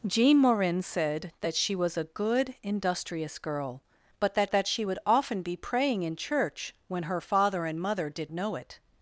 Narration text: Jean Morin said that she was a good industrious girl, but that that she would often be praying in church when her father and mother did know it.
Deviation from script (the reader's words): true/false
false